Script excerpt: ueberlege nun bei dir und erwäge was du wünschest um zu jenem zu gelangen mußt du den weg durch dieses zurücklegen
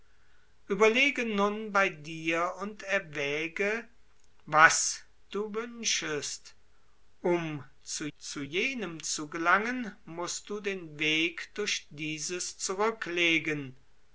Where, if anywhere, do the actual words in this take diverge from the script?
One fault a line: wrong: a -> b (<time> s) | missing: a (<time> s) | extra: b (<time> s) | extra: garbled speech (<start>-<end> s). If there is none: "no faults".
extra: zu (8.2 s)